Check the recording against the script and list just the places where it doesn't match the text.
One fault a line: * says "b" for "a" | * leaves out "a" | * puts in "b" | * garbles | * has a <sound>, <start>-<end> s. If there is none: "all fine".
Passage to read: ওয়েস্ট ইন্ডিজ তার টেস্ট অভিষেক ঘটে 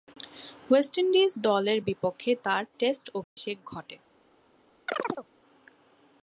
* puts in "দলের বিপক্ষে"
* has a dropout, 3.2-3.4 s
* has a chirp, 4.9-5.3 s